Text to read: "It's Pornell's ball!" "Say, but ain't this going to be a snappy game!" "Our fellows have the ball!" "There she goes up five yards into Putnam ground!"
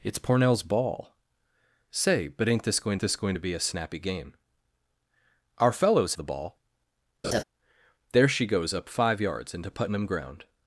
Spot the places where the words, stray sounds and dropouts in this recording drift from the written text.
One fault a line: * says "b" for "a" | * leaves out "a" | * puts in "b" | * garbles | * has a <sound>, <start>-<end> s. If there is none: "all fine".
* puts in "this going"
* leaves out "have"
* has a laugh, 7.2-7.4 s